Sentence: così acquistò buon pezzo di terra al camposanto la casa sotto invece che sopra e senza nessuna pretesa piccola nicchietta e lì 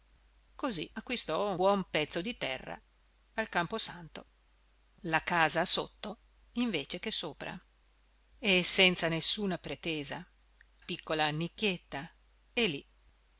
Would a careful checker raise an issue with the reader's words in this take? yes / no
no